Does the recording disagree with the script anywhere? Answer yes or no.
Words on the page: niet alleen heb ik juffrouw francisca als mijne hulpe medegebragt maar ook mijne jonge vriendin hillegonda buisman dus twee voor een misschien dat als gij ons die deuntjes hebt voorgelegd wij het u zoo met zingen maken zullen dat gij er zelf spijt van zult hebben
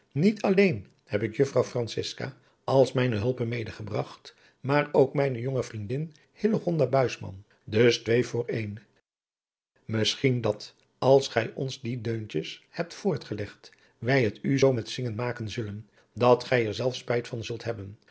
no